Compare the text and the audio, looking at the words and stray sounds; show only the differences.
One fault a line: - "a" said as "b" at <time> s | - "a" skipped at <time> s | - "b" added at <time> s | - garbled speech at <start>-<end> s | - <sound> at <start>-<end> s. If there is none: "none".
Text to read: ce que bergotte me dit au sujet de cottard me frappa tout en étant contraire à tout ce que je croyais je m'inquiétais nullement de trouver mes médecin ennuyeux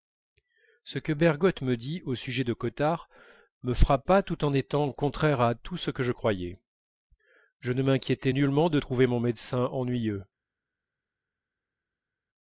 - "ne" added at 7.7 s
- "mes" said as "mon" at 9.1 s